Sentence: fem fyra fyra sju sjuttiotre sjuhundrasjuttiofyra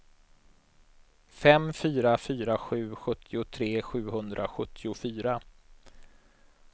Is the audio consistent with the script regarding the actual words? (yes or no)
yes